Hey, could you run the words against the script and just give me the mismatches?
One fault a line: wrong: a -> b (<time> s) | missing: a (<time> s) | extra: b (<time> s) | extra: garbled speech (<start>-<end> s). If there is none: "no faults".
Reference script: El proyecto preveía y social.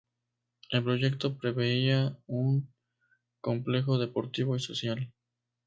extra: un complejo deportivo (2.3 s)